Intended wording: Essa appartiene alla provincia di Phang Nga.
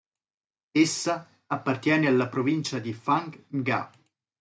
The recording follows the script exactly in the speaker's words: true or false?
true